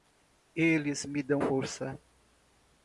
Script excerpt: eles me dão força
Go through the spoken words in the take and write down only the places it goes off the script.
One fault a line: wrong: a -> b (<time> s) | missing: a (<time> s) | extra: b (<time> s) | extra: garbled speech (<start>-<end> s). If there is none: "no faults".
no faults